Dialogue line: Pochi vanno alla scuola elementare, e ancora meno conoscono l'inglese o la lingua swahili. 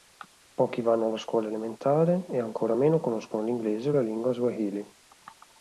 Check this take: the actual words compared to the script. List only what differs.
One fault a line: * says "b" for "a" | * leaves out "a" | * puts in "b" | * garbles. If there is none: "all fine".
all fine